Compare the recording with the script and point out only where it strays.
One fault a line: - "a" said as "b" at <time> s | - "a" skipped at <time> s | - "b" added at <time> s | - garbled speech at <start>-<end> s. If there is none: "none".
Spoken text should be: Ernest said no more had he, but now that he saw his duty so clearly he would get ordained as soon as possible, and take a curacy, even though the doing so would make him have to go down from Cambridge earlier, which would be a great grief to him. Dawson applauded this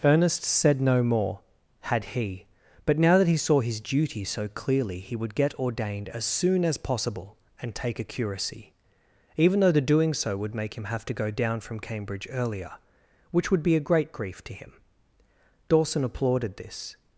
none